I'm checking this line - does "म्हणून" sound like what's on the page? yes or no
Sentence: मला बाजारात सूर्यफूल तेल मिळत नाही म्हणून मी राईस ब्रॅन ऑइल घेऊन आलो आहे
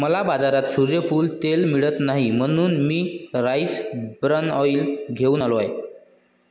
yes